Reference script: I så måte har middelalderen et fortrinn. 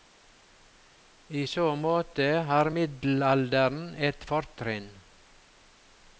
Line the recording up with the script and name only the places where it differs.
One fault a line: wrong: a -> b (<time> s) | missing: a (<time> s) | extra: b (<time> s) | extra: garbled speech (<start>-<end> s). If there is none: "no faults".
no faults